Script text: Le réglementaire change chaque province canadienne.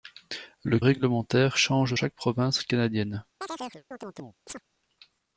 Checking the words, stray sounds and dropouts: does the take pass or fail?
fail